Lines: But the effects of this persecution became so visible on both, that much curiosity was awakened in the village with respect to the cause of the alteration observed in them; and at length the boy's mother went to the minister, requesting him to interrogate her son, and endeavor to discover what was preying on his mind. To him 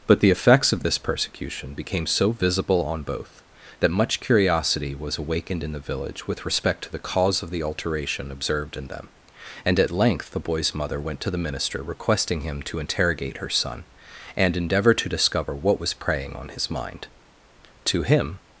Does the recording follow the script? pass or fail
pass